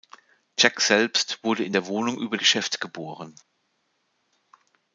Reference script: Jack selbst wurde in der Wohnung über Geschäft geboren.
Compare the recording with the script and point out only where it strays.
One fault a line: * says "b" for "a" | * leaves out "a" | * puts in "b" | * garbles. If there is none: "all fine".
all fine